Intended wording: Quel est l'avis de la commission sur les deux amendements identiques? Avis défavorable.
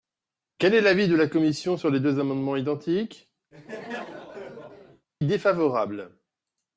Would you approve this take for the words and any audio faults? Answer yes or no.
no